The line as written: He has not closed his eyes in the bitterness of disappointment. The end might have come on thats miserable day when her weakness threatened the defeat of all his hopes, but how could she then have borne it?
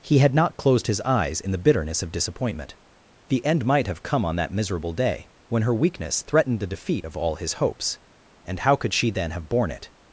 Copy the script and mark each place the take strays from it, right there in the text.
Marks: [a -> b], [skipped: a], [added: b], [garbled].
He [has -> had] not closed his eyes in the bitterness of disappointment. The end might have come on [thats -> that] miserable day when her weakness threatened the defeat of all his hopes, [but -> and] how could she then have borne it?